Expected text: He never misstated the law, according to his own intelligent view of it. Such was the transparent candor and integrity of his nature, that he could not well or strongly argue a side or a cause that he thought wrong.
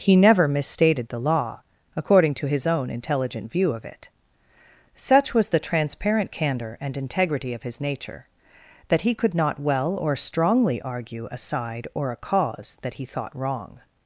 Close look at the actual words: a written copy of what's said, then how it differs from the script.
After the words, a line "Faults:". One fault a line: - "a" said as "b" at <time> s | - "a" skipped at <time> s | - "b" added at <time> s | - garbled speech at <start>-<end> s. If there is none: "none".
He never misstated the law, according to his own intelligent view of it. Such was the transparent candor and integrity of his nature, that he could not well or strongly argue a side or a cause that he thought wrong.
Faults:
none